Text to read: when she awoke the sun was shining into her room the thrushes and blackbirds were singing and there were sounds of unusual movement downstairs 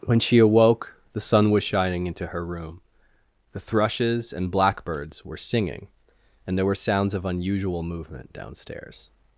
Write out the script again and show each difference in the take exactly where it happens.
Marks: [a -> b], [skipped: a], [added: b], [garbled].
when she awoke the sun was shining into her room the thrushes and blackbirds were singing and there were sounds of unusual movement downstairs